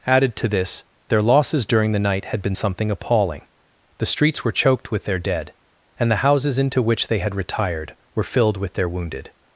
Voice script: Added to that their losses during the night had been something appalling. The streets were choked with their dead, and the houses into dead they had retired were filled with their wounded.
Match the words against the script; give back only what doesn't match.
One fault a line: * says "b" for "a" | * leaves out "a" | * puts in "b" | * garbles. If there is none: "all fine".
* says "this" for "that"
* says "which" for "dead"